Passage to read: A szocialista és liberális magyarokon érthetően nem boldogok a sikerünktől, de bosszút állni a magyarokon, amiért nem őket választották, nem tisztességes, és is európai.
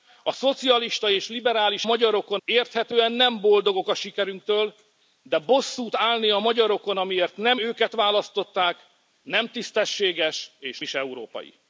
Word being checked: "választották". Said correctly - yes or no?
yes